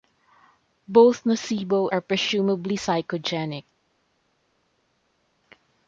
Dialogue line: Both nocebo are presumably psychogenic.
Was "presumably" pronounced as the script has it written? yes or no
yes